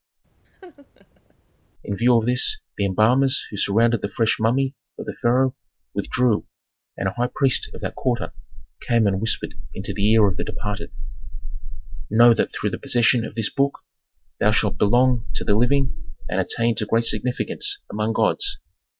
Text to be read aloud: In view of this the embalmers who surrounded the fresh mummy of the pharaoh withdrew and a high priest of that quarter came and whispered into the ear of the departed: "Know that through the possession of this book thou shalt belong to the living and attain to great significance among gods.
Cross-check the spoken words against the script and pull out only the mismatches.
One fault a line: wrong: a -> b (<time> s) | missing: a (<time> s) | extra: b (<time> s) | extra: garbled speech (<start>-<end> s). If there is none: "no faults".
no faults